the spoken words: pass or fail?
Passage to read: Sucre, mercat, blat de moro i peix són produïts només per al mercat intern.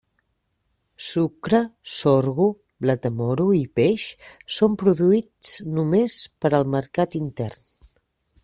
fail